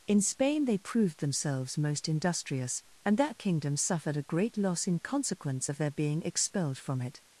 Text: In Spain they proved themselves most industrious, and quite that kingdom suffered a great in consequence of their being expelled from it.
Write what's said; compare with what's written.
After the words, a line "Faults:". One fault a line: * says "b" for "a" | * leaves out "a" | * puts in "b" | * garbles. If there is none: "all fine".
In Spain they proved themselves most industrious, and that kingdom suffered a great loss in consequence of their being expelled from it.
Faults:
* leaves out "quite"
* puts in "loss"